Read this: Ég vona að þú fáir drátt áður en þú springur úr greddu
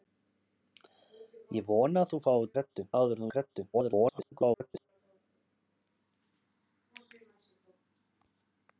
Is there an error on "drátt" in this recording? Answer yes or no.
yes